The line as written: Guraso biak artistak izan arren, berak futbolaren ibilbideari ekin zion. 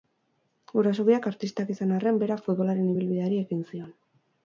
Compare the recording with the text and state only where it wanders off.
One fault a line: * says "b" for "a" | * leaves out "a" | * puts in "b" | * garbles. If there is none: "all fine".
all fine